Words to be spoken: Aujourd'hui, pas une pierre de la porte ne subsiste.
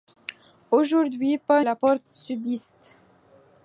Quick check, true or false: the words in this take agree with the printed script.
false